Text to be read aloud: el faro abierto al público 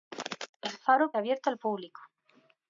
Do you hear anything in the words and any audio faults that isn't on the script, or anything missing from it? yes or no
no